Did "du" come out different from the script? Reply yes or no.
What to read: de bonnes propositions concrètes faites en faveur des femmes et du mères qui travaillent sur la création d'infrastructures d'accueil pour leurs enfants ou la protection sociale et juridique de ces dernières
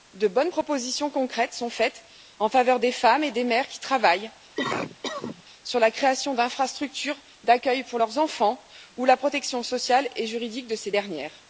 yes